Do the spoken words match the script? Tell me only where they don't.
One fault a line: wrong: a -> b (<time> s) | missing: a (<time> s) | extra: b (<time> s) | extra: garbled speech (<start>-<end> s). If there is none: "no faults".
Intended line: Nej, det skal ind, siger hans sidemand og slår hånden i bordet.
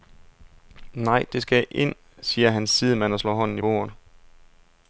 no faults